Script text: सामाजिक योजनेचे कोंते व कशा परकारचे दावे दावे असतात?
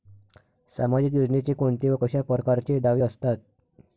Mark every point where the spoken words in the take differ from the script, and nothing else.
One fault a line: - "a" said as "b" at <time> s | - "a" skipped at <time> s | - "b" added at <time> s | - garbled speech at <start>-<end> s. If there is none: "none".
- "दावे" skipped at 3.0 s